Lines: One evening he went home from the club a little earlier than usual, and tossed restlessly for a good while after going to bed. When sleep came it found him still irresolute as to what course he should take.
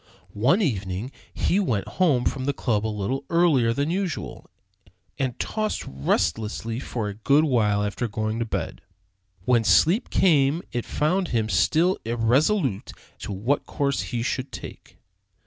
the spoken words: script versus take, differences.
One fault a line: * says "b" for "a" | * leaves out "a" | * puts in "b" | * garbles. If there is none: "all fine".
* leaves out "as"